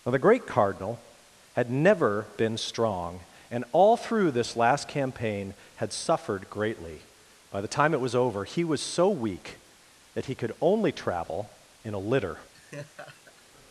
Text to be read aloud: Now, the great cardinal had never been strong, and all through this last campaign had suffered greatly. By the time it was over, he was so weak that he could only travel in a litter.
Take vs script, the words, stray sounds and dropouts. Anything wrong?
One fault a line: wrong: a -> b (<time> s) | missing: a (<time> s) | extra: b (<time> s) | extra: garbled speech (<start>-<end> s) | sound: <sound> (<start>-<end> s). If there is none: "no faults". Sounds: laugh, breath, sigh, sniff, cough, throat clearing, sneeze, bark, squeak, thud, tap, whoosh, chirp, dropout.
sound: laugh (12.5-13.4 s)